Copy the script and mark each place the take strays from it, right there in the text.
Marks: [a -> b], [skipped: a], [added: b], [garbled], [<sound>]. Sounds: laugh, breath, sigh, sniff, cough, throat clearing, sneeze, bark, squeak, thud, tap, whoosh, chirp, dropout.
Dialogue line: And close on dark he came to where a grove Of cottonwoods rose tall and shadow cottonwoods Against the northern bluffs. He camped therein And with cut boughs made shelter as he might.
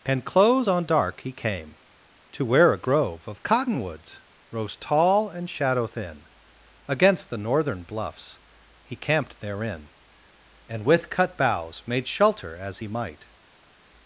And close on dark he came to where a grove Of cottonwoods rose tall and shadow [cottonwoods -> thin] Against the northern bluffs. He camped therein And with cut boughs made shelter as he might.